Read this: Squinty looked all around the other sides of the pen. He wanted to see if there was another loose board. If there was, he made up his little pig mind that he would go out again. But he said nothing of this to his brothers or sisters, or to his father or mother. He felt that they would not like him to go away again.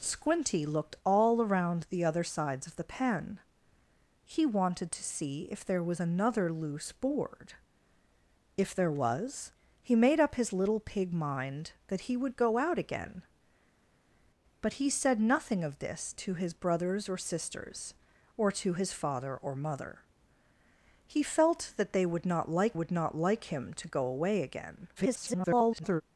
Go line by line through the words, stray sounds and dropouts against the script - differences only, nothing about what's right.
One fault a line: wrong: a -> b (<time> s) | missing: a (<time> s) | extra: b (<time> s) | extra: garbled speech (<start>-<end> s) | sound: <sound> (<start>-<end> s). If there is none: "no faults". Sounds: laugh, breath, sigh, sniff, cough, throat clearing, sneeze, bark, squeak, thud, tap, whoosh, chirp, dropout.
extra: would not like (22.7 s)
extra: garbled speech (25.0-26.0 s)